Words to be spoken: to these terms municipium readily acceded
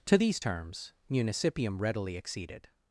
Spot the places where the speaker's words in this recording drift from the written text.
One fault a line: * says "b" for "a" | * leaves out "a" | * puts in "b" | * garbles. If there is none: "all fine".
all fine